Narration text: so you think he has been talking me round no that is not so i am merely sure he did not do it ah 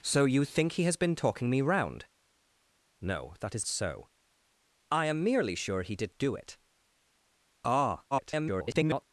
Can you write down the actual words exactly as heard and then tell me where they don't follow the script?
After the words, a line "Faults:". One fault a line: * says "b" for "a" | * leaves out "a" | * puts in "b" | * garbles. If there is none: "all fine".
so you think he has been talking me round no that is so i am merely sure he did do it ah [garbled]
Faults:
* leaves out "not"
* leaves out "not"
* garbles